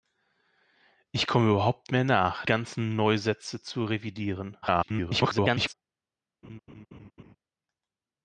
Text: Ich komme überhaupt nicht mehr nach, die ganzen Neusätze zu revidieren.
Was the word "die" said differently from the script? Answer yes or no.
yes